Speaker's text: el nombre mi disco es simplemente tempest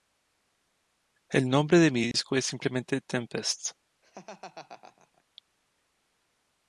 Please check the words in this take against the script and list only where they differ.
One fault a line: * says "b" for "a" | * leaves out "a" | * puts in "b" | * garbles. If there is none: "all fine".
* puts in "de"